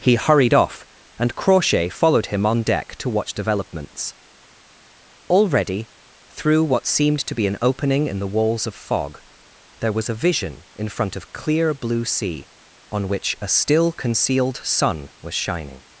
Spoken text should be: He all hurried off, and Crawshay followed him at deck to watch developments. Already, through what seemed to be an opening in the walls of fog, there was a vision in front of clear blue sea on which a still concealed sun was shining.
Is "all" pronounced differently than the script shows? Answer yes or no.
yes